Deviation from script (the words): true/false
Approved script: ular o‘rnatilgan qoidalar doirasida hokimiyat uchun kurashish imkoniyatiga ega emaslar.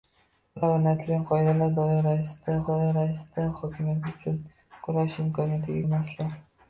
true